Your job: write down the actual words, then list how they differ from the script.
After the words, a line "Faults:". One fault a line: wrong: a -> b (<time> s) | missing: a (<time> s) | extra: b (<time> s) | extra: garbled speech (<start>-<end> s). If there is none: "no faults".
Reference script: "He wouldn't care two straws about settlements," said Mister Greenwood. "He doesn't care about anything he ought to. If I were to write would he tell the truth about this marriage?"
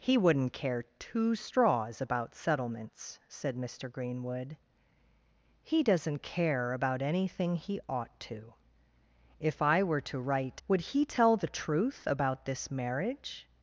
"He wouldn't care two straws about settlements," said Mister Greenwood. "He doesn't care about anything he ought to. If I were to write would he tell the truth about this marriage?"
Faults:
no faults